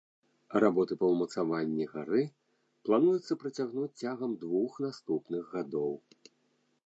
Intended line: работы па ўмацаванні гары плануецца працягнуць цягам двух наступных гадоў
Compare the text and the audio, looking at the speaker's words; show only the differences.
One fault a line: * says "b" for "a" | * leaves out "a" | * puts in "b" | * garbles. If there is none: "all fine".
all fine